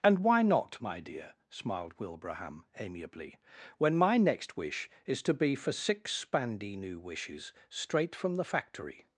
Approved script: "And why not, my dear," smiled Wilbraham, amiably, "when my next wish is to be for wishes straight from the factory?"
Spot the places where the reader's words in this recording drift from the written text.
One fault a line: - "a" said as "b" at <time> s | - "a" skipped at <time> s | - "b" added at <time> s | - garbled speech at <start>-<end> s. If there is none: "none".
- "six spandy new" added at 5.7 s